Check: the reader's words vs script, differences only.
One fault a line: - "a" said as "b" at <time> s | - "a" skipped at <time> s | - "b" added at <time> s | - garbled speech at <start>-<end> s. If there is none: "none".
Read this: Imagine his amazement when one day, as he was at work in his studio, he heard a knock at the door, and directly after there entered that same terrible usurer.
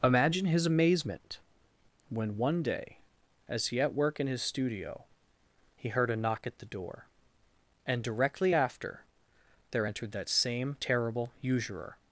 - "was" skipped at 3.8 s